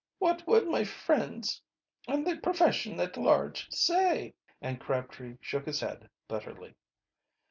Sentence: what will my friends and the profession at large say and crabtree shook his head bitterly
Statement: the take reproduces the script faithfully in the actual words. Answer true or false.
true